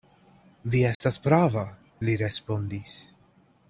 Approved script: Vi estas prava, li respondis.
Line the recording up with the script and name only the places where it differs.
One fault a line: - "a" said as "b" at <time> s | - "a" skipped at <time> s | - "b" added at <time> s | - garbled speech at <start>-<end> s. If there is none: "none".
none